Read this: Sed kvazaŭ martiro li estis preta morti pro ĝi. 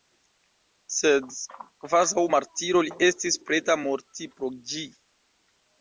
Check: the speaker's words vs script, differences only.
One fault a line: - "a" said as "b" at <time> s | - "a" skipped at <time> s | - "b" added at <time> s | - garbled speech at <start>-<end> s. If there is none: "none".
none